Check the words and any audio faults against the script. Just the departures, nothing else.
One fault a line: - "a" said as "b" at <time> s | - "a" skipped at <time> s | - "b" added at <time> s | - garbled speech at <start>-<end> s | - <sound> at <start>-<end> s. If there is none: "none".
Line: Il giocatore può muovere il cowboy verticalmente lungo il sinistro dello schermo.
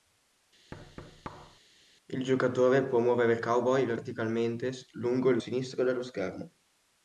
- thud at 0.7-1.6 s